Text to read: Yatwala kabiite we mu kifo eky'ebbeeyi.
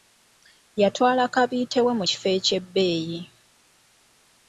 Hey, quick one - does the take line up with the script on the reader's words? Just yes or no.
yes